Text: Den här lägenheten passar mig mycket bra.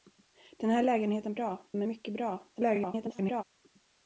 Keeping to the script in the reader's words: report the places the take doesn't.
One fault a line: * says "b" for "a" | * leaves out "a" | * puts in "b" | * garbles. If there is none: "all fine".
* says "bra" for "passar"
* garbles